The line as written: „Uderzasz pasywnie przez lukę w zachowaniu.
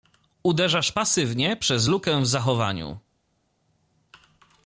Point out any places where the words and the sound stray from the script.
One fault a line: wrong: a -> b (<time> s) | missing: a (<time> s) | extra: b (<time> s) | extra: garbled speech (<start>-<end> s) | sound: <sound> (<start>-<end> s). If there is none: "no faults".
no faults